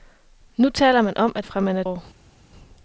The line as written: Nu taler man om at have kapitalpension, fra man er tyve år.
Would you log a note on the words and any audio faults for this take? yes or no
yes